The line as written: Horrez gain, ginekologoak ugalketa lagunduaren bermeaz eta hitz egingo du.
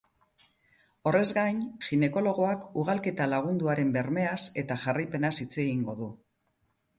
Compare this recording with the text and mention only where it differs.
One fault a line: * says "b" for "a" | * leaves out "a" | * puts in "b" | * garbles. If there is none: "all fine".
* puts in "jarraipenaz"